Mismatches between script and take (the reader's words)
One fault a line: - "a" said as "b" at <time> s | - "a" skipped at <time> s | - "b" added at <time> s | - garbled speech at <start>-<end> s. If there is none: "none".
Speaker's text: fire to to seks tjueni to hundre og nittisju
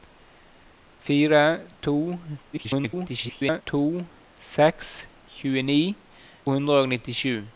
- garbled speech at 2.5-3.6 s
- "to" skipped at 6.0 s